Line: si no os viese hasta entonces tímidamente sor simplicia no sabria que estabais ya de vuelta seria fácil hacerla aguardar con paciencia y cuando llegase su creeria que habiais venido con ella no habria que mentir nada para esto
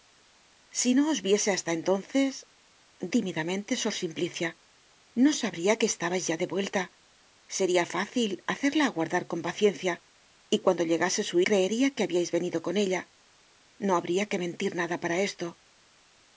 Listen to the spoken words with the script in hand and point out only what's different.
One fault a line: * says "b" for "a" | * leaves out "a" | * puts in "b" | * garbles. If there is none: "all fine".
all fine